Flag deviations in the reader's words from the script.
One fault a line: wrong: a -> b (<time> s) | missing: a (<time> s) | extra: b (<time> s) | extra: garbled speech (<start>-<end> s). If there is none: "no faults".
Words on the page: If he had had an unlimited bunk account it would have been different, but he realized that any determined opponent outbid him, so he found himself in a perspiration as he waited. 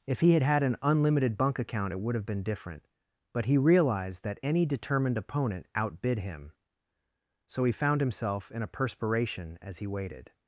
no faults